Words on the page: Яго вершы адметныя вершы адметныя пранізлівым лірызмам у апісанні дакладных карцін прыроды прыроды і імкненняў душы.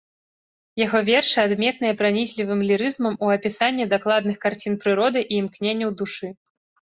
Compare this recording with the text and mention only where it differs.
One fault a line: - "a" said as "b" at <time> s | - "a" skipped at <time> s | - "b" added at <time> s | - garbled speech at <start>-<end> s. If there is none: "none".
- "вершы адметныя" skipped at 2.0 s
- "прыроды" skipped at 5.2 s